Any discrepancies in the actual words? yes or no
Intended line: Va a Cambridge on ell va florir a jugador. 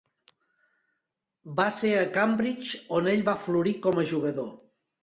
yes